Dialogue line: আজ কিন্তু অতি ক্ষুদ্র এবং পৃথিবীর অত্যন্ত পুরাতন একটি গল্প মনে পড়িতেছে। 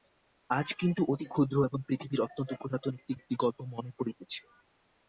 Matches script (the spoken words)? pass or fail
fail